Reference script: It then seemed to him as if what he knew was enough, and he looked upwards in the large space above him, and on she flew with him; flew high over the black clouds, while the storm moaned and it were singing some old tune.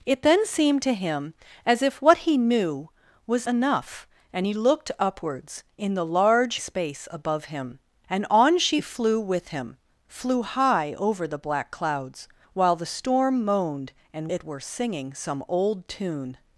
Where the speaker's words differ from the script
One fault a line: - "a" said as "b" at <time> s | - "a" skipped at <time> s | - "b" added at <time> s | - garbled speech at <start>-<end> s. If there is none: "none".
none